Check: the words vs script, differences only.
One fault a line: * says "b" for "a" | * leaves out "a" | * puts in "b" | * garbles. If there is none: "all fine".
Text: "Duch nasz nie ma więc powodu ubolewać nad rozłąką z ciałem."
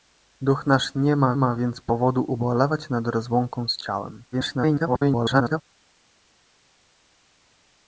* puts in "ma"
* garbles